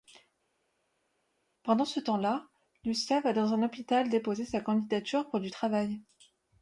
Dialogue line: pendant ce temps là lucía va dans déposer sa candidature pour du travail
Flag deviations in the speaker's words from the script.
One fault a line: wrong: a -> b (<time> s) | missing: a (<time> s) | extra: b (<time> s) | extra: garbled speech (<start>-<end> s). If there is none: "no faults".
extra: un hôpital (3.5 s)